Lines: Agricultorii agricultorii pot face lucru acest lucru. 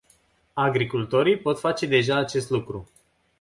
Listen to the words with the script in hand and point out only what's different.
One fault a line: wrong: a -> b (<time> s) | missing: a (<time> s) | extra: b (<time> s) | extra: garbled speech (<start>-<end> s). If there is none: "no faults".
missing: agricultorii (1.4 s)
wrong: lucru -> deja (1.9 s)